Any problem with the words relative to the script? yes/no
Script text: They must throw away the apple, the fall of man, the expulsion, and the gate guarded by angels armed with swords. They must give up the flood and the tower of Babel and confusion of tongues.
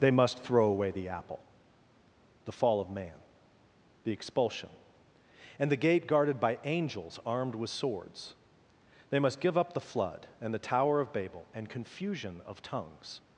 no